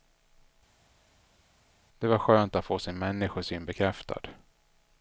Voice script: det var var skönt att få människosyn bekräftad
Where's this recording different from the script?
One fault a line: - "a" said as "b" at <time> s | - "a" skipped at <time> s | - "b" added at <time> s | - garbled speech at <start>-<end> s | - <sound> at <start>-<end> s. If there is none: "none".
- "var" skipped at 2.2 s
- "sin" added at 2.8 s